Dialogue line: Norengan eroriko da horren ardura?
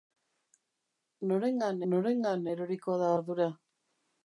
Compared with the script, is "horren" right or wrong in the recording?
wrong